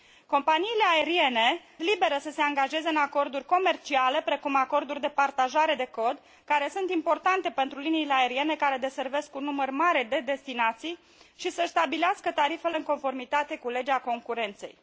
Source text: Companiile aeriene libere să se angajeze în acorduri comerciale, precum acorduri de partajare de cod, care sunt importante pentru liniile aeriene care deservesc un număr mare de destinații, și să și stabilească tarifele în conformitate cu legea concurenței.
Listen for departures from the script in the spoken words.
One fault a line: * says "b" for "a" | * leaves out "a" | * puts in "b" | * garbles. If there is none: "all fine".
all fine